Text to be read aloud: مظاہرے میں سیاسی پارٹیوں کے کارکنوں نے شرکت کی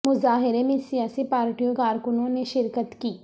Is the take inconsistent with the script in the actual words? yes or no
yes